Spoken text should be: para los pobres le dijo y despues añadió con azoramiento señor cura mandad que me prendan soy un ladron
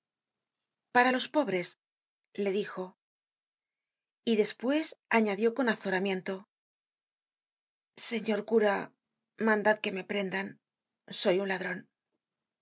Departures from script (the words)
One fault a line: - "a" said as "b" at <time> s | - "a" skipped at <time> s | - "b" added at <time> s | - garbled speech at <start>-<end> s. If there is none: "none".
none